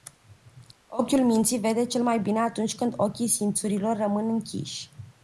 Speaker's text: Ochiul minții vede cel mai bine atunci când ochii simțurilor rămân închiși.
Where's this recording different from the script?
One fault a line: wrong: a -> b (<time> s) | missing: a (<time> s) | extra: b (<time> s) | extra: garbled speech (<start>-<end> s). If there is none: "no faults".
no faults